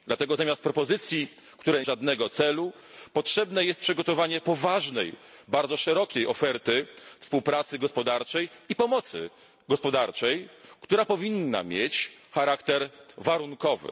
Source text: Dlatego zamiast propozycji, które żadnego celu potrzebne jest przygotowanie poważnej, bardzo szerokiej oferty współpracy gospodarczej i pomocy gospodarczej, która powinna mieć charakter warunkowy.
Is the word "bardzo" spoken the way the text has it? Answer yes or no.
yes